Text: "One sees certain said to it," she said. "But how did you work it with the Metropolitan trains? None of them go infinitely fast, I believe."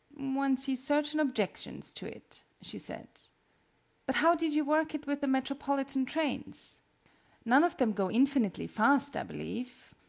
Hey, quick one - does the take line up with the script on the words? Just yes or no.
no